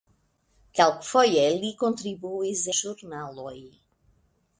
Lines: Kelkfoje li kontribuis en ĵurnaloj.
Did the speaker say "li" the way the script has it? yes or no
yes